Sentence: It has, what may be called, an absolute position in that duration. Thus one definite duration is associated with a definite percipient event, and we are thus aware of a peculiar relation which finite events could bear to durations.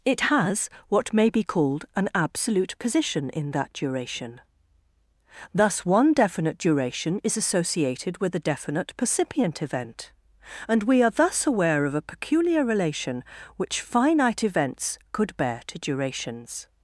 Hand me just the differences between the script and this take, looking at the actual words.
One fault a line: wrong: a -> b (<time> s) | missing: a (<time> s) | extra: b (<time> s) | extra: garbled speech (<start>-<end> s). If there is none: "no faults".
no faults